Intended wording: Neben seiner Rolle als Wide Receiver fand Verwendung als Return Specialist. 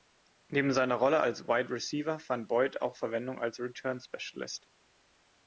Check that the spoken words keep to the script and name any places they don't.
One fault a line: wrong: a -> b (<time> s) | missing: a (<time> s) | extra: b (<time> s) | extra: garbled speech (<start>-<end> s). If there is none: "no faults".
extra: Boyd auch (2.5 s)